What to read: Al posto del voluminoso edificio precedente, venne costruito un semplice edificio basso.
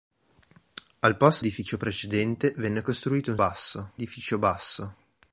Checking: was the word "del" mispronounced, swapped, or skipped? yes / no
yes